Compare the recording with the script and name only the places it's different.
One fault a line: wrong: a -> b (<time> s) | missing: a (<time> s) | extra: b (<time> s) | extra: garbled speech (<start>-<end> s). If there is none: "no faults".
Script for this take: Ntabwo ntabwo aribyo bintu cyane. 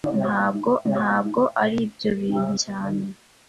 no faults